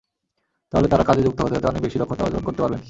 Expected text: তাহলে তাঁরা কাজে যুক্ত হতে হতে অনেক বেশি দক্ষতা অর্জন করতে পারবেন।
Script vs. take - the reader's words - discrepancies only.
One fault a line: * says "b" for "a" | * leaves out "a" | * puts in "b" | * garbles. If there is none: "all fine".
all fine